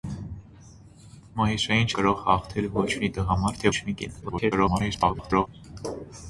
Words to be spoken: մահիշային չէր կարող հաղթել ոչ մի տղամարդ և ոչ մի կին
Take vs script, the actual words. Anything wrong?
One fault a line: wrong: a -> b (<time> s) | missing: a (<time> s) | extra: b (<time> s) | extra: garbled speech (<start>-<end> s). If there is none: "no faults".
missing: չէր (1.9 s)
missing: և (3.7 s)
extra: garbled speech (4.2-5.5 s)